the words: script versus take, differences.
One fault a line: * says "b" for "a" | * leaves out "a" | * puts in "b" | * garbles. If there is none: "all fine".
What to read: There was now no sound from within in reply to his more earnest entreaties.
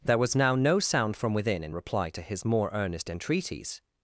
all fine